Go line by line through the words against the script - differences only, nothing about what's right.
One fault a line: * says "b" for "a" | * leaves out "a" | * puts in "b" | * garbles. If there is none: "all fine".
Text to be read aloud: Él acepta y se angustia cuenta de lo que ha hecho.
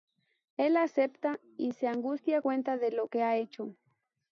all fine